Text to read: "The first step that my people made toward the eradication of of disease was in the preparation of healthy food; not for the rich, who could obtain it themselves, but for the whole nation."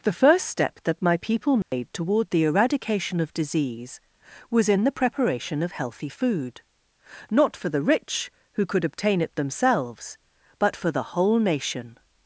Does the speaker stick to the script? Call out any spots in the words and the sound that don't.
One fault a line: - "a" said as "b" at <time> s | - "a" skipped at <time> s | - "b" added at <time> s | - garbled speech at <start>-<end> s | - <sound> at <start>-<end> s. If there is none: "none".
- dropout at 1.6-1.7 s
- "of" skipped at 3.3 s